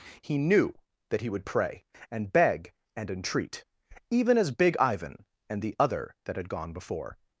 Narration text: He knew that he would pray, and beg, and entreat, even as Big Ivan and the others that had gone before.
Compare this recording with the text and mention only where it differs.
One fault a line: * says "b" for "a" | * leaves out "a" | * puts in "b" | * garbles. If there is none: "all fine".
* says "other" for "others"